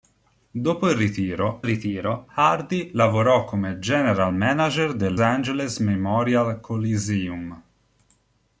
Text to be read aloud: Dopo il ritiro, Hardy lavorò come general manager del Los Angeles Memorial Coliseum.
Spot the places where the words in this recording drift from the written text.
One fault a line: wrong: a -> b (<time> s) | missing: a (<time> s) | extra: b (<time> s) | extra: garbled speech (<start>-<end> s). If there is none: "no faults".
extra: ritiro (1.6 s)
missing: Los (5.2 s)